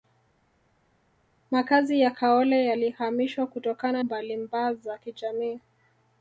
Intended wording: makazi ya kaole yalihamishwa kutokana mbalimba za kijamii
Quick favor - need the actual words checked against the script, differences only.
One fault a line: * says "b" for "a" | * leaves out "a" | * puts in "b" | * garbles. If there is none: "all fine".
all fine